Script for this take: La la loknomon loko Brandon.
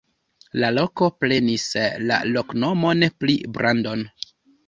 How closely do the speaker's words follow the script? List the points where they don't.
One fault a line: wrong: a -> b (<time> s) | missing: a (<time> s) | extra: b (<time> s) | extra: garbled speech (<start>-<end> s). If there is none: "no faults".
extra: loko prenis (0.8 s)
wrong: loko -> pri (3.2 s)